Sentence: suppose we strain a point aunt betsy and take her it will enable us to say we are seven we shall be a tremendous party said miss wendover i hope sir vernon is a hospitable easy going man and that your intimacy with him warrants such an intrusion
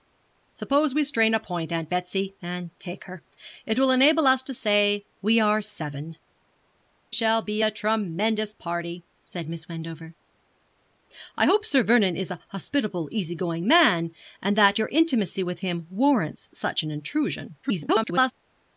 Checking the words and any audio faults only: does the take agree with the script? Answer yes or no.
no